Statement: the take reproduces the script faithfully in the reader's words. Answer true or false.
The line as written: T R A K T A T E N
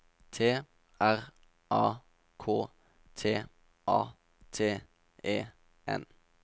true